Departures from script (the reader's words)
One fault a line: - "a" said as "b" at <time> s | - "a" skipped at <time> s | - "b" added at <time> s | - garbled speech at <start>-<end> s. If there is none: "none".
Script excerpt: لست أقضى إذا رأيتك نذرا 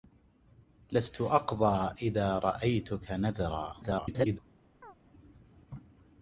- garbled speech at 3.8-4.4 s